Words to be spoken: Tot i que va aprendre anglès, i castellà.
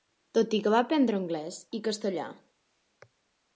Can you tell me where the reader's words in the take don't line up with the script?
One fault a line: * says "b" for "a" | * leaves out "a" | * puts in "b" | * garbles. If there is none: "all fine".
all fine